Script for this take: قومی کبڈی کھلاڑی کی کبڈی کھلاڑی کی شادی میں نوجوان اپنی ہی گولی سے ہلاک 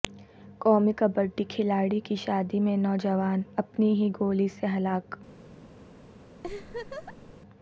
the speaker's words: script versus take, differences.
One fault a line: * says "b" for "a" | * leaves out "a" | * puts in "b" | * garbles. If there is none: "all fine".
* leaves out "کبڈی کھلاڑی کی"